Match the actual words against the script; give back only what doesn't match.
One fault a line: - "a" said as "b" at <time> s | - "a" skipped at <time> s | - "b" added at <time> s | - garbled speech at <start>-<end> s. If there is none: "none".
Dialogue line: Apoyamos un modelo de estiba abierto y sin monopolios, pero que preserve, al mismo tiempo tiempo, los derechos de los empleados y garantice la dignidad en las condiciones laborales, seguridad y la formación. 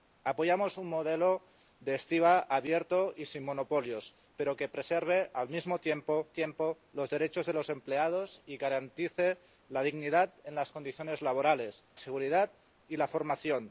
none